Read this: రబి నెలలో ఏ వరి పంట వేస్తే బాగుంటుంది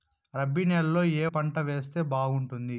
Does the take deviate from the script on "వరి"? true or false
true